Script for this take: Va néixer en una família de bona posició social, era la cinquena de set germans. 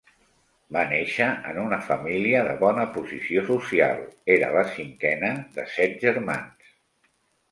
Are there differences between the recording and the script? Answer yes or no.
no